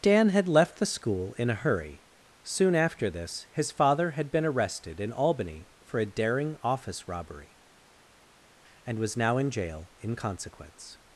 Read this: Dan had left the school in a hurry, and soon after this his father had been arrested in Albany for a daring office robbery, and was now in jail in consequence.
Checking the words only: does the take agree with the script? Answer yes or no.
no